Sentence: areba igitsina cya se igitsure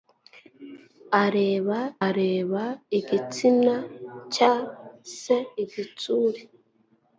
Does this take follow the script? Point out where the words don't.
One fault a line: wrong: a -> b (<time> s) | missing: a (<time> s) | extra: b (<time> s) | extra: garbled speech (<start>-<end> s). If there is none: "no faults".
extra: areba (2.0 s)